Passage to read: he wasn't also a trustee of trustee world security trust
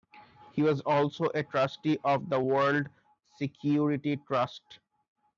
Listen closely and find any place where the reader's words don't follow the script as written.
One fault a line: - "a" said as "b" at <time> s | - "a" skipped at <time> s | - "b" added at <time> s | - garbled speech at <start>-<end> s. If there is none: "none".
- "wasn't" said as "was" at 0.6 s
- "trustee" said as "the" at 2.3 s